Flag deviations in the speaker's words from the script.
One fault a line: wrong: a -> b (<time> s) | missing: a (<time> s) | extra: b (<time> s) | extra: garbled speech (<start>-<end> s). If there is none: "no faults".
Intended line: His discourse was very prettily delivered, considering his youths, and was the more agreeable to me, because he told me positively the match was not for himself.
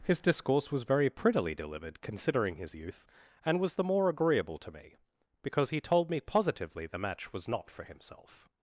wrong: youths -> youth (2.7 s)